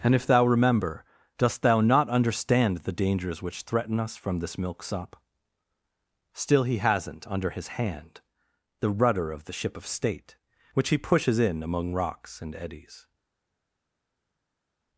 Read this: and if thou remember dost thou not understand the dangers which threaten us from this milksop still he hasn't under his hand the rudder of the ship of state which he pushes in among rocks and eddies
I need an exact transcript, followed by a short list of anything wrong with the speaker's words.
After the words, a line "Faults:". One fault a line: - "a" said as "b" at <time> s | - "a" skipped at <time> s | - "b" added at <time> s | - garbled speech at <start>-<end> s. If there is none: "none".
and if thou remember dost thou not understand the dangers which threaten us from this milksop still he hasn't under his hand the rudder of the ship of state which he pushes in among rocks and eddies
Faults:
none